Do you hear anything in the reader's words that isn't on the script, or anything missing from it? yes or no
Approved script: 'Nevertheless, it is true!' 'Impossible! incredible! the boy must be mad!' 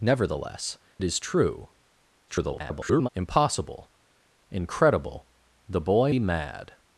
yes